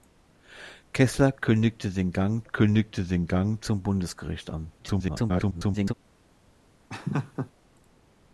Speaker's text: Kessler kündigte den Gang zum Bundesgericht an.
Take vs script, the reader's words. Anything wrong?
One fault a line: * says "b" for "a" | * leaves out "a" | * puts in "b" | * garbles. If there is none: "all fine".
* puts in "kündigte den Gang"
* garbles